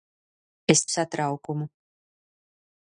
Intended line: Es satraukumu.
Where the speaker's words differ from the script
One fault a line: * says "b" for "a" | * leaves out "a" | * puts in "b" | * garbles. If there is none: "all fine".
all fine